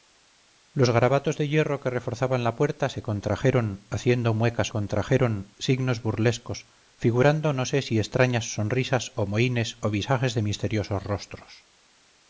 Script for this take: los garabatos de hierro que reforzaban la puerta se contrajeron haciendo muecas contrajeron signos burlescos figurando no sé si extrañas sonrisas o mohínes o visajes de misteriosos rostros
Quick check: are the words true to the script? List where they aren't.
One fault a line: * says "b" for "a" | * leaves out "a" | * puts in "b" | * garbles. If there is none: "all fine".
all fine